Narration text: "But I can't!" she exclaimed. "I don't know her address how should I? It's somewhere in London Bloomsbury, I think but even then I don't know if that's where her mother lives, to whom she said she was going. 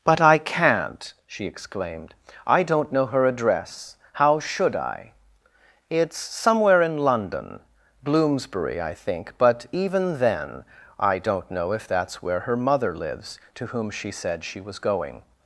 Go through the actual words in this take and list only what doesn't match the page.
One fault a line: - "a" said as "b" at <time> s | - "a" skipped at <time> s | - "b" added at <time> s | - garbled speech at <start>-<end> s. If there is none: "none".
none